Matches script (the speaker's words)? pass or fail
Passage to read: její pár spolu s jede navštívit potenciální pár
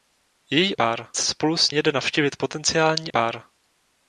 pass